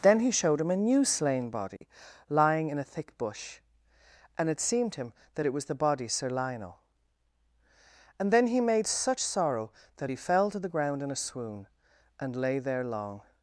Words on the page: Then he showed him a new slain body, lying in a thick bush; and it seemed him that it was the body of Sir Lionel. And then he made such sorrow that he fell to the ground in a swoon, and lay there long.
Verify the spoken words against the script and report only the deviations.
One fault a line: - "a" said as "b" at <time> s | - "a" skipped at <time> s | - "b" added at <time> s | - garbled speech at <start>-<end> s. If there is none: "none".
- "of" skipped at 6.1 s